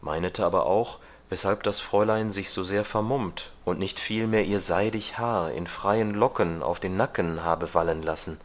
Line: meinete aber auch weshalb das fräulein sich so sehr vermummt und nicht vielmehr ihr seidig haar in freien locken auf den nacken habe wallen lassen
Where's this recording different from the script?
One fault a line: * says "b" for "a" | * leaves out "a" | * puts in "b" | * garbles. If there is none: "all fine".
all fine